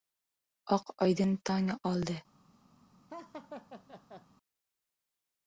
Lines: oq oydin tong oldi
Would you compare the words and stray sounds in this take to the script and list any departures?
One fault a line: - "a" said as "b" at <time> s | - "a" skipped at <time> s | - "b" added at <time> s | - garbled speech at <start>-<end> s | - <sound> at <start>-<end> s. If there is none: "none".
- laugh at 3.1-4.3 s